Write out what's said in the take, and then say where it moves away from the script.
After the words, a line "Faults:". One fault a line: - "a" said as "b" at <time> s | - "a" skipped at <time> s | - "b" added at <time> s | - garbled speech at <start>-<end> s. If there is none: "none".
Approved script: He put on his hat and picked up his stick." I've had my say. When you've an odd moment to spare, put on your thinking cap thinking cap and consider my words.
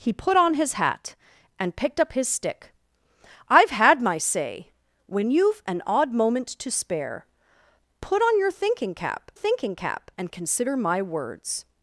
He put on his hat and picked up his stick." I've had my say. When you've an odd moment to spare, put on your thinking cap thinking cap and consider my words.
Faults:
none